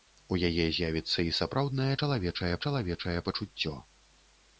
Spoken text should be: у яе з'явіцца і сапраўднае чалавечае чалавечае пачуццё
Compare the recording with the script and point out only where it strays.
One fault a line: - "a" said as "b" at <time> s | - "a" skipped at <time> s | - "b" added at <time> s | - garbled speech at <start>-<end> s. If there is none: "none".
none